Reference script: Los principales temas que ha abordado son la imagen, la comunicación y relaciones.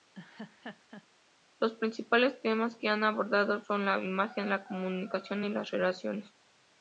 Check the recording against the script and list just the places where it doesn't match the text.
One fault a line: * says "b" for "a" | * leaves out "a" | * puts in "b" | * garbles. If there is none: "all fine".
* puts in "las"